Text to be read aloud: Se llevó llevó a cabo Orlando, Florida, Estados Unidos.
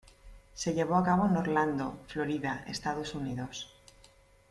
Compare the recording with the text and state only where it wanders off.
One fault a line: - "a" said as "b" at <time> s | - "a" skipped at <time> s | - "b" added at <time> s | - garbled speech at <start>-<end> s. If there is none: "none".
- "llevó" skipped at 0.9 s
- "en" added at 1.2 s